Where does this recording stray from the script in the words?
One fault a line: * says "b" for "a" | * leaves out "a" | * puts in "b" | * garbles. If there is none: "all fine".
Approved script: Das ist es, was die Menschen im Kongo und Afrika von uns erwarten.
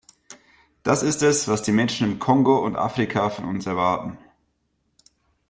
all fine